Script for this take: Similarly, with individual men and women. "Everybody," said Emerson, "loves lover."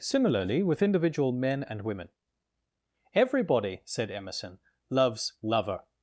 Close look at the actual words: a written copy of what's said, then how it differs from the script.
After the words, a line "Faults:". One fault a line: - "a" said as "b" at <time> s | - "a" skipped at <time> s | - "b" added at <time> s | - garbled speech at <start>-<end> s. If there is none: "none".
Similarly, with individual men and women. "Everybody," said Emerson, "loves lover."
Faults:
none